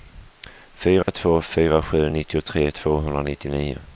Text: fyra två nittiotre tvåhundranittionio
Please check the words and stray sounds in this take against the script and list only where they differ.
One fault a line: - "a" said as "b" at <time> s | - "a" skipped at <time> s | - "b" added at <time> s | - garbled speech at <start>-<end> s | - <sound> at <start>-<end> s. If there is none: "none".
- dropout at 1.0-1.1 s
- "fyra sju" added at 1.4 s